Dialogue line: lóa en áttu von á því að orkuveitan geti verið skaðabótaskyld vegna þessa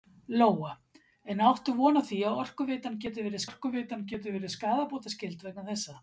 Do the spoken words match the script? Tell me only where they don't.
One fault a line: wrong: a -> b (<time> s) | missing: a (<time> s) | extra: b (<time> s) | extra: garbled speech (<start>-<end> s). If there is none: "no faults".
extra: orkuveitan geti verið (3.5 s)